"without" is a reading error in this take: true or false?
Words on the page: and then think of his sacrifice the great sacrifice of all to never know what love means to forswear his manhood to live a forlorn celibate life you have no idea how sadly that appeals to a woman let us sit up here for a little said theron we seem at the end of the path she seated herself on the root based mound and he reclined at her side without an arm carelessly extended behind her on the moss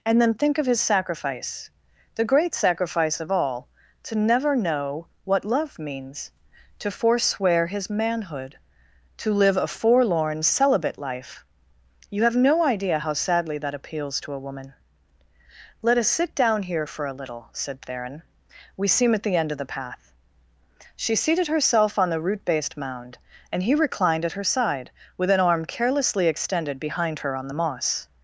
true